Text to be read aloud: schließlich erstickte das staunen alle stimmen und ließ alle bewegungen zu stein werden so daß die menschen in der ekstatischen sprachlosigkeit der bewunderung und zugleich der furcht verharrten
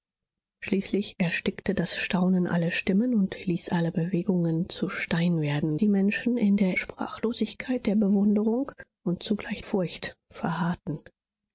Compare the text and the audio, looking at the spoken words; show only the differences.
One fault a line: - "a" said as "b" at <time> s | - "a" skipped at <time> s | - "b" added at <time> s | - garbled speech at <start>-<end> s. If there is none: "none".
- "so daß" skipped at 5.8 s
- "ekstatischen" skipped at 6.8 s
- "der" skipped at 9.6 s